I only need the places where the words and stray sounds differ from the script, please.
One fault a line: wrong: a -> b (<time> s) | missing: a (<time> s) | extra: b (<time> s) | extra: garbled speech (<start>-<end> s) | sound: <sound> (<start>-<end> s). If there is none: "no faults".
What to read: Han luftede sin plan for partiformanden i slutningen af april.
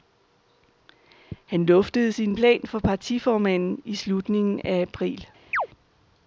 sound: chirp (5.5-5.7 s)